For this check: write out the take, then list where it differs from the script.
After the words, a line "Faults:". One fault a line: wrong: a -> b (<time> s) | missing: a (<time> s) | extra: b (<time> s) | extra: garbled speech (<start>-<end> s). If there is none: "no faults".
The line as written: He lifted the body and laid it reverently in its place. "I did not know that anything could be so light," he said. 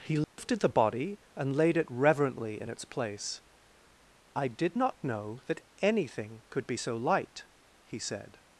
He lifted the body and laid it reverently in its place. "I did not know that anything could be so light," he said.
Faults:
no faults